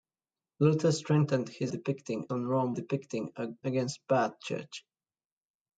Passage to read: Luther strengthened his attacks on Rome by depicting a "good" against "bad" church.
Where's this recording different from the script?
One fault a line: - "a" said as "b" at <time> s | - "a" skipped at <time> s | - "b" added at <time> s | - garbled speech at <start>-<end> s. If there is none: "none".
- "attacks" said as "depicting" at 1.7 s
- "by" skipped at 2.7 s
- "good" skipped at 3.5 s